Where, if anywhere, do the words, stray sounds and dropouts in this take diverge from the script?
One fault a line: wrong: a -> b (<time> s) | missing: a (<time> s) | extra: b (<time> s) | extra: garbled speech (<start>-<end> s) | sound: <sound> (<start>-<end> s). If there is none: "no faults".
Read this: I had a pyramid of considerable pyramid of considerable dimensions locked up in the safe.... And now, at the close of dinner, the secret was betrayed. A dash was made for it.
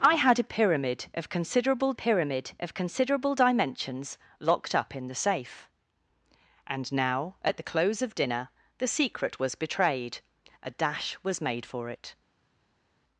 no faults